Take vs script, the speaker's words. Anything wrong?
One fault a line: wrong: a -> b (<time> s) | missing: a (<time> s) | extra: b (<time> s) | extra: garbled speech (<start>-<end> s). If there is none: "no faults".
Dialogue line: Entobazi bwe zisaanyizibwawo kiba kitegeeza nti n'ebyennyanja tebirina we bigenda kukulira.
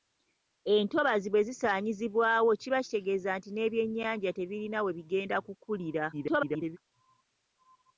extra: garbled speech (6.1-6.8 s)